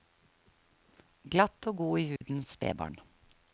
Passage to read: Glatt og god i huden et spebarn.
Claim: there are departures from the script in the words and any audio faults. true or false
true